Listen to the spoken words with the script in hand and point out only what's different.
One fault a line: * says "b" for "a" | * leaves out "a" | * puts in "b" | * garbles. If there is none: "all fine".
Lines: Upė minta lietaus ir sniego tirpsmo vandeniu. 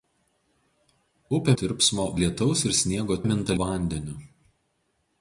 * says "tirpsmo" for "minta"
* says "minta" for "tirpsmo"